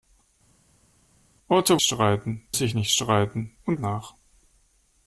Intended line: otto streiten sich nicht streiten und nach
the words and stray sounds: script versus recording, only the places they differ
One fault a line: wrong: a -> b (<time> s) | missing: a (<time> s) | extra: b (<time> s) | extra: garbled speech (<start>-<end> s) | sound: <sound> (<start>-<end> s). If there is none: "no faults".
no faults